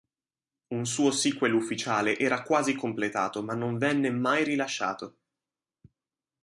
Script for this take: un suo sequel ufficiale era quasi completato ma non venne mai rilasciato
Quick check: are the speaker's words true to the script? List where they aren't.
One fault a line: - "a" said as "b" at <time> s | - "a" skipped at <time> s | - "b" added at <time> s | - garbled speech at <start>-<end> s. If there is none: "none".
none